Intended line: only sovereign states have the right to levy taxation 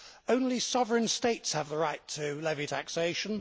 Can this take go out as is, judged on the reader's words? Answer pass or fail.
pass